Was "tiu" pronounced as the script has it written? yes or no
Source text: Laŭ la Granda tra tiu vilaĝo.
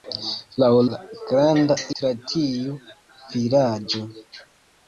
yes